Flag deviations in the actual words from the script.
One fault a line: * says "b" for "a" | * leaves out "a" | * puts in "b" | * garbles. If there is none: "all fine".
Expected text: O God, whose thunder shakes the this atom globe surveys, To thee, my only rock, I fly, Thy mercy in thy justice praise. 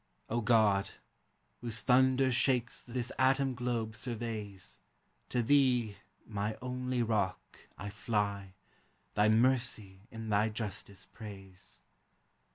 all fine